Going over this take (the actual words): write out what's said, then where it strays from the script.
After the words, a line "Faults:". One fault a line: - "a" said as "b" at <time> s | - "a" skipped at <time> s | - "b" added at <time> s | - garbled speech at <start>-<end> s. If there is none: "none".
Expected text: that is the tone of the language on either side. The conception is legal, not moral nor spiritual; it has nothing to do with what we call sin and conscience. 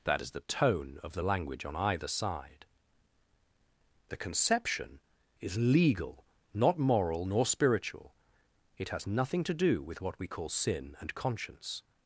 that is the tone of the language on either side. The conception is legal, not moral nor spiritual; it has nothing to do with what we call sin and conscience.
Faults:
none